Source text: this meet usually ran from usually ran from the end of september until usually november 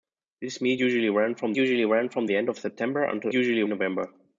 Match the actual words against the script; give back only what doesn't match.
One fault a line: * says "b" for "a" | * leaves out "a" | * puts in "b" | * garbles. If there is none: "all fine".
all fine